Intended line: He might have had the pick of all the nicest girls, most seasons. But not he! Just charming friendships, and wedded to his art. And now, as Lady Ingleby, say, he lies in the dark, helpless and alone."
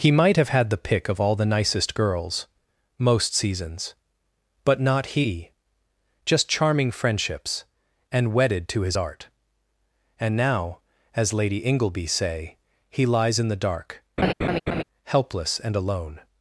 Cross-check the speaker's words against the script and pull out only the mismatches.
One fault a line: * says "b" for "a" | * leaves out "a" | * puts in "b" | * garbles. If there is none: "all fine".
all fine